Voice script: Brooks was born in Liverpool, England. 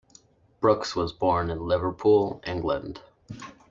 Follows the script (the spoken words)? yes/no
yes